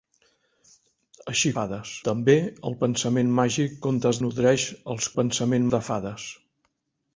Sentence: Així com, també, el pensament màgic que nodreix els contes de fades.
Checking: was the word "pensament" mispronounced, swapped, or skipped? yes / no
no